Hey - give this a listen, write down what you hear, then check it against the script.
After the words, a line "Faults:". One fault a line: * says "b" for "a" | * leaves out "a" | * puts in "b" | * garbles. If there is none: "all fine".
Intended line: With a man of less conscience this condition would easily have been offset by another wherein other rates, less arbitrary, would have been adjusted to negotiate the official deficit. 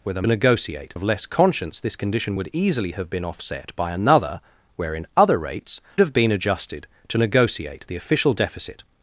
With a negotiate of less conscience this condition would easily have been offset by another wherein other rates, have been adjusted to negotiate the official deficit.
Faults:
* says "negotiate" for "man"
* leaves out "less arbitrary would"